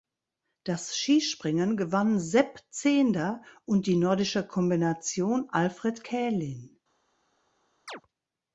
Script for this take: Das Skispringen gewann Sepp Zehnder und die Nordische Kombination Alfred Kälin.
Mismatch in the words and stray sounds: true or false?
true